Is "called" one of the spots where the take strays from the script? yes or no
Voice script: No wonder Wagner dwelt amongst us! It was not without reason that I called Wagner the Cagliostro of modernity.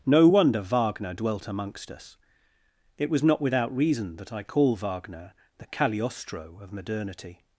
yes